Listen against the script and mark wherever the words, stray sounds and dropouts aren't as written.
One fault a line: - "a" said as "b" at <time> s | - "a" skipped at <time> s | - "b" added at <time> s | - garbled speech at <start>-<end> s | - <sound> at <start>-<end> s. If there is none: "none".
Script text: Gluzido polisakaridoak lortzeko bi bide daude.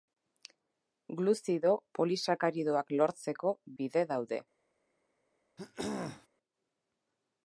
- "bi" skipped at 3.5 s
- throat clearing at 5.6-6.3 s